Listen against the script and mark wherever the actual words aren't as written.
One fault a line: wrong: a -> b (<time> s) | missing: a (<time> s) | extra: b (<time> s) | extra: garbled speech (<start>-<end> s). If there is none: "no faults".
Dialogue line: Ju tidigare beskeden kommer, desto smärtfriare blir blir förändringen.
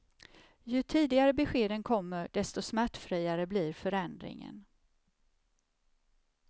missing: blir (3.7 s)